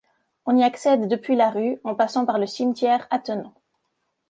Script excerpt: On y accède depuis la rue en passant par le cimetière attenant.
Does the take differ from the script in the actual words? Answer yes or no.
no